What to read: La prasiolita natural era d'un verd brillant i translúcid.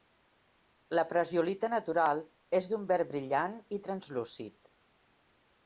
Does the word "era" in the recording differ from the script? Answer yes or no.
yes